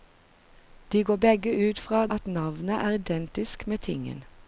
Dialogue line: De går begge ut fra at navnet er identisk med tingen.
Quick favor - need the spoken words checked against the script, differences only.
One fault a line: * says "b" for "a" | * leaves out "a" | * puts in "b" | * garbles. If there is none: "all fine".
all fine